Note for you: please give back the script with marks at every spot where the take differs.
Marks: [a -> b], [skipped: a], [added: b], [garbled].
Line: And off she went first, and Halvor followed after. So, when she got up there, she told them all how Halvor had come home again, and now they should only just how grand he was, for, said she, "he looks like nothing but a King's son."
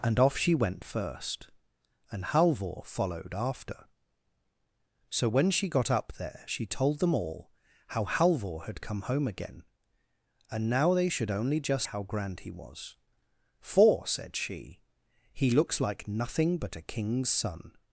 And off she went first, and Halvor followed after. So, when she got up there, she told them all how Halvor had come home again, and now they should only just how grand he was, for, said she, "he looks like nothing but a King's son."